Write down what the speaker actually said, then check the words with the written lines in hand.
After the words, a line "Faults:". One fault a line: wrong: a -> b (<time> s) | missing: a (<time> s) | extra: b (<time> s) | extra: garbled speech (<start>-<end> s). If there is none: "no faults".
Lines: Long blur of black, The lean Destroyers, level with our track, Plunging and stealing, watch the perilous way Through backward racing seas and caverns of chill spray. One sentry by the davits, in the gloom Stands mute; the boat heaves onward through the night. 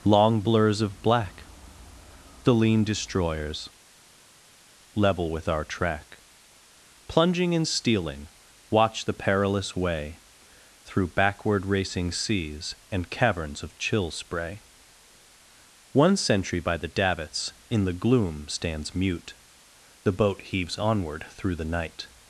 Long blurs of black, The lean Destroyers, level with our track, Plunging and stealing, watch the perilous way Through backward racing seas and caverns of chill spray. One sentry by the davits, in the gloom Stands mute; the boat heaves onward through the night.
Faults:
wrong: blur -> blurs (0.4 s)